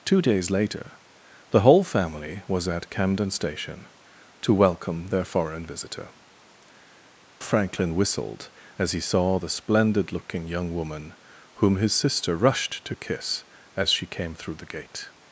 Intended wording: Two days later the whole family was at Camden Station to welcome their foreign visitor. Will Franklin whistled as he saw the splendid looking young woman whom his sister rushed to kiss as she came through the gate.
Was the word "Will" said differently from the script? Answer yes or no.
yes